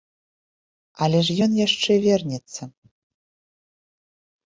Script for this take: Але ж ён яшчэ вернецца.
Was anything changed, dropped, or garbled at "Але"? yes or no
no